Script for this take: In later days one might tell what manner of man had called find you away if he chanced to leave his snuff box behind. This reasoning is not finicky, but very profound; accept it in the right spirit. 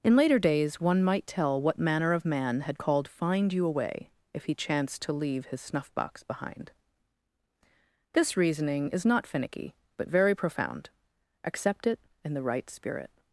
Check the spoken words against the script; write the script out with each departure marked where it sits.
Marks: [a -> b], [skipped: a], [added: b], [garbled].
In later days one might tell what manner of man had called find you away if he chanced to leave his snuff box behind. This reasoning is not finicky, but very profound; accept it in the right spirit.